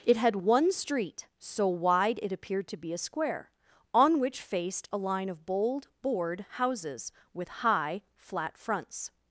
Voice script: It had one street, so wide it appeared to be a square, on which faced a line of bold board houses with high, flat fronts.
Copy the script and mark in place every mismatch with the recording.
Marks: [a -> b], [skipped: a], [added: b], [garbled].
It had one street, so wide it appeared to be a square, on which faced a line of bold board houses with high, flat fronts.